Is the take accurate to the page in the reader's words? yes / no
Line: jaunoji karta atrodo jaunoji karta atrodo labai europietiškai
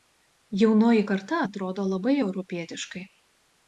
no